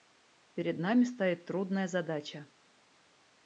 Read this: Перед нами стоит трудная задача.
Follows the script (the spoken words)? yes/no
yes